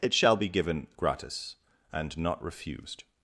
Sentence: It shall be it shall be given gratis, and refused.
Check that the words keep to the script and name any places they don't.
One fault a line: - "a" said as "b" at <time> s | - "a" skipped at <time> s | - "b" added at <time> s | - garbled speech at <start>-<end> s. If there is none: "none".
- "it shall be" skipped at 0.5 s
- "not" added at 2.2 s